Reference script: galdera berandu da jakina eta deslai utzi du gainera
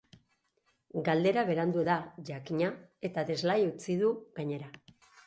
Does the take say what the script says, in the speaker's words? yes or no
yes